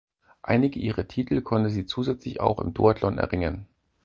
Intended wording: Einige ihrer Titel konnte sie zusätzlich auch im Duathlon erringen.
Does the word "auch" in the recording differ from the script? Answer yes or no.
no